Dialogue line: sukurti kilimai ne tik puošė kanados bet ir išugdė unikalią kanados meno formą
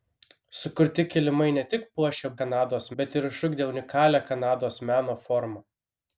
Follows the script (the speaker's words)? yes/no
yes